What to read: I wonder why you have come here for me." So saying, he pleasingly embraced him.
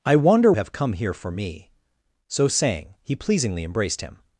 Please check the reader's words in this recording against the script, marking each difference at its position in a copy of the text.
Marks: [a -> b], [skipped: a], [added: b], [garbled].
I wonder [skipped: why you] have come here for me." So saying, he pleasingly embraced him.